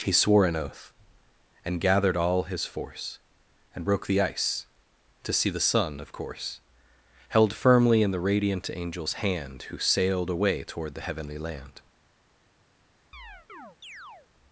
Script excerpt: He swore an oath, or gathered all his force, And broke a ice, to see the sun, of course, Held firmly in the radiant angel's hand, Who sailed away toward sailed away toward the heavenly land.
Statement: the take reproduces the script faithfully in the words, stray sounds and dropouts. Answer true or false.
false